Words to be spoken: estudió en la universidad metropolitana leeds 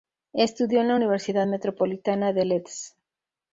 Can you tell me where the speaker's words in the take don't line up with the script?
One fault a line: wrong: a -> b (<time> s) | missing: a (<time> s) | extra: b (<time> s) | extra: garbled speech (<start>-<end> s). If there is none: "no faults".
extra: de (2.3 s)